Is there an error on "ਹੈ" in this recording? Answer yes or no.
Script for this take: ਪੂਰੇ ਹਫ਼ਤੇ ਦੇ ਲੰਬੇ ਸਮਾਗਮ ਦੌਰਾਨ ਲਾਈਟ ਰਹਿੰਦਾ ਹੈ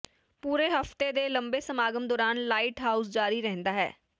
no